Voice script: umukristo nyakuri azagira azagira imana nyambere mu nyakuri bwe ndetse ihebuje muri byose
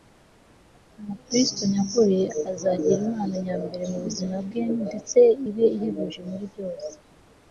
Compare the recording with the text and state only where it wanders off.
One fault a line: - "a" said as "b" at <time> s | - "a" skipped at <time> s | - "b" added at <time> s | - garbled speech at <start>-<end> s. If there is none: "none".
- "azagira" skipped at 3.0 s
- "nyakuri" said as "buzima" at 4.0 s
- "ibe" added at 5.5 s